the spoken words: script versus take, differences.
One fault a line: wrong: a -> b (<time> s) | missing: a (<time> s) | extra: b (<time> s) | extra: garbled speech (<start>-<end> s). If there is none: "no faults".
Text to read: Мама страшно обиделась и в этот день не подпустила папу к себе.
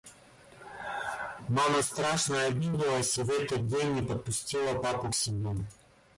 no faults